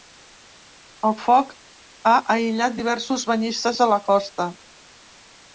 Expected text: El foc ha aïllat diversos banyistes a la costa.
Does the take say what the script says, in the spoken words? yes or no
yes